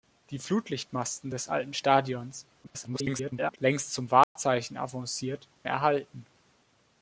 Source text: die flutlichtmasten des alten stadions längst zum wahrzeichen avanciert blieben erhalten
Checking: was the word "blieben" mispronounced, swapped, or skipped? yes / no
yes